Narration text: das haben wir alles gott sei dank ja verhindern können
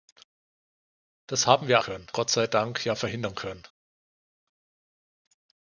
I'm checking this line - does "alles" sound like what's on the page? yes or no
no